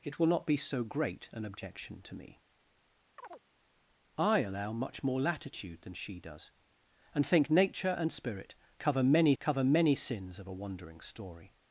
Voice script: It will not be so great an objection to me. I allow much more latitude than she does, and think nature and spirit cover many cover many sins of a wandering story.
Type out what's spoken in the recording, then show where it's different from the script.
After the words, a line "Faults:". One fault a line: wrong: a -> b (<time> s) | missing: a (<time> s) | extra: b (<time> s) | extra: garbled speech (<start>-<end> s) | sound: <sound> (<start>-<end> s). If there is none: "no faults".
It will not be so great an objection to me. I allow much more latitude than she does, and think nature and spirit cover many cover many sins of a wandering story.
Faults:
sound: chirp (3.2-3.4 s)